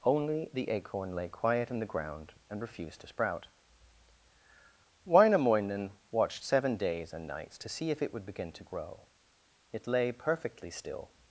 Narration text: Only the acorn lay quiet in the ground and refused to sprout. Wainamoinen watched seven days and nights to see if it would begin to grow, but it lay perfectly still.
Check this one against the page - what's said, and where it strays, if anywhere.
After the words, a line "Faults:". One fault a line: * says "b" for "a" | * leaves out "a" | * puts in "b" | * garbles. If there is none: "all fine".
Only the acorn lay quiet in the ground and refused to sprout. Wainamoinen watched seven days and nights to see if it would begin to grow, it lay perfectly still.
Faults:
* leaves out "but"